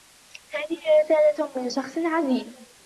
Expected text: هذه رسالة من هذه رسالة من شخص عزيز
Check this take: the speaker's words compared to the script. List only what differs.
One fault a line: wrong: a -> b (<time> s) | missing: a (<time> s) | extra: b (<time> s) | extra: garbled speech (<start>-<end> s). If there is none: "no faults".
missing: هذه رسالة من (1.7 s)